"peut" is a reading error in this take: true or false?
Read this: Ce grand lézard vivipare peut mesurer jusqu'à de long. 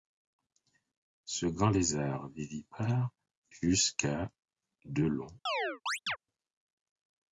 true